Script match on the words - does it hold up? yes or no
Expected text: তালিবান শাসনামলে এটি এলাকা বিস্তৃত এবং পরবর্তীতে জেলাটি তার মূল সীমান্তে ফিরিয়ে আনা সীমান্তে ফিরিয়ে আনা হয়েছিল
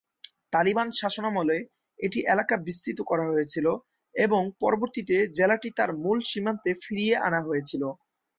no